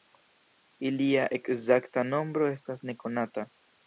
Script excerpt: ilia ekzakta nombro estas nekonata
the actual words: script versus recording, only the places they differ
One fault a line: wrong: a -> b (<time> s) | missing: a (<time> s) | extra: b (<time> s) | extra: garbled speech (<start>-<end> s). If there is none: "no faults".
no faults